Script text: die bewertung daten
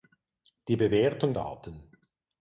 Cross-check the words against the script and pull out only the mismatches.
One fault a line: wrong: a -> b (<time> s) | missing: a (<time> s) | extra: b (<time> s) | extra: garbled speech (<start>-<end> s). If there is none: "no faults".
no faults